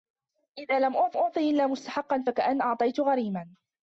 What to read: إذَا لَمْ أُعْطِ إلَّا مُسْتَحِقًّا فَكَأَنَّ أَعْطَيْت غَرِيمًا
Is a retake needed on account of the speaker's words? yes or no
yes